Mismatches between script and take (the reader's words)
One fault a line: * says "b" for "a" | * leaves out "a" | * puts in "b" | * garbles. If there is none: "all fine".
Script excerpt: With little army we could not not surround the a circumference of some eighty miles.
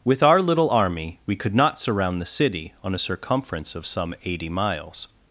* puts in "our"
* leaves out "not"
* puts in "city on"